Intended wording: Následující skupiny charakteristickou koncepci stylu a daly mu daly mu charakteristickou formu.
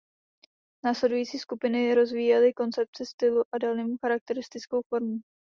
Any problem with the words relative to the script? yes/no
yes